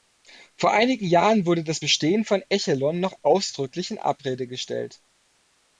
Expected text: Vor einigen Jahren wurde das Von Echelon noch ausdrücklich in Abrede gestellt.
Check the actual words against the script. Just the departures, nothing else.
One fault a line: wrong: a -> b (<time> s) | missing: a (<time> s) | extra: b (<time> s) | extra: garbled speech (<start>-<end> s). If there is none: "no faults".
extra: Bestehen (1.8 s)